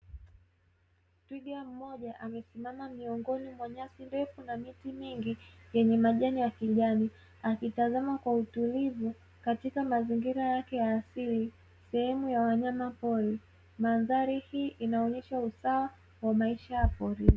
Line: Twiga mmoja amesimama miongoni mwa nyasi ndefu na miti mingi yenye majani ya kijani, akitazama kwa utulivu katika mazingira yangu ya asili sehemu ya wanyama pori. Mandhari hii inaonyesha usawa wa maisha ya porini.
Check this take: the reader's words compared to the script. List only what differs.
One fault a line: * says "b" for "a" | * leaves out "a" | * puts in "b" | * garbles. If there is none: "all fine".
* says "yake" for "yangu"